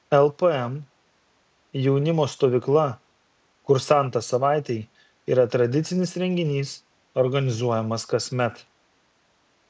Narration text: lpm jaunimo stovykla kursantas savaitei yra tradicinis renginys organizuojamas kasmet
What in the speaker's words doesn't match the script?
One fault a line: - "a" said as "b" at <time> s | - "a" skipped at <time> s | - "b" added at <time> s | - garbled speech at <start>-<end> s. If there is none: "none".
none